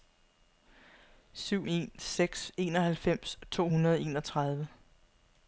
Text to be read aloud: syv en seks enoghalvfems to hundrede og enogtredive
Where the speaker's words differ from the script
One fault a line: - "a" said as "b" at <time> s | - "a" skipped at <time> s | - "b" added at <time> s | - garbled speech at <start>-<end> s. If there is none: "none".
none